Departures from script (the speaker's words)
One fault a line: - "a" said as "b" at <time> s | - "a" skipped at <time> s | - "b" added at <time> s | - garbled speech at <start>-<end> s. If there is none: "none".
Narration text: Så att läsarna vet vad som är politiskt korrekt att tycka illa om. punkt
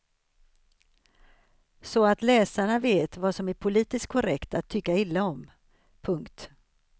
none